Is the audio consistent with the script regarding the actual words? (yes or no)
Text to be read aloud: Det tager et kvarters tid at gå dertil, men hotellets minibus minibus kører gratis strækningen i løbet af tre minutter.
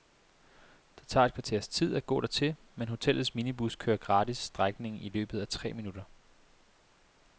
no